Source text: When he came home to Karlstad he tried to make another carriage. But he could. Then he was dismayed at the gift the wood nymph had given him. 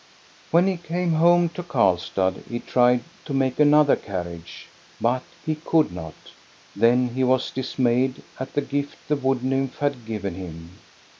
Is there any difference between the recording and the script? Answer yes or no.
yes